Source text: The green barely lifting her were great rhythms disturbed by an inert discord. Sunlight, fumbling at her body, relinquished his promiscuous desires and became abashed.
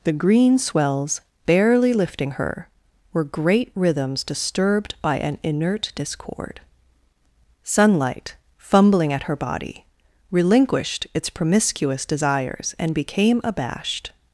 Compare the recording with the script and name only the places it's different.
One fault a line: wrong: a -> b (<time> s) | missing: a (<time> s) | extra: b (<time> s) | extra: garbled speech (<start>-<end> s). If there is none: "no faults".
extra: swells (0.6 s)
wrong: his -> its (11.1 s)